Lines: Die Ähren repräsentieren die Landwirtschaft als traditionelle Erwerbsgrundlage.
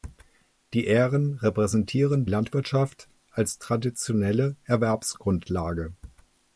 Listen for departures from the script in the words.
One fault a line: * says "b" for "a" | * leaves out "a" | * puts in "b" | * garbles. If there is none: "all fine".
* leaves out "die"